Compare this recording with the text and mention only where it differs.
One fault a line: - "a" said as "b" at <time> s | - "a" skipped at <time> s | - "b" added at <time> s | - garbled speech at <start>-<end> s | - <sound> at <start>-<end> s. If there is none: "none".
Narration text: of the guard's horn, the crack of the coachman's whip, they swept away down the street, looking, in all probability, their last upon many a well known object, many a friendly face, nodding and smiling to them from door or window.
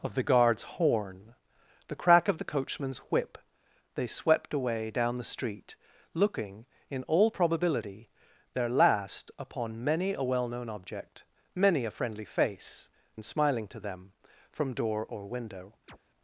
- "nodding" skipped at 12.9 s
- chirp at 15.9-16.0 s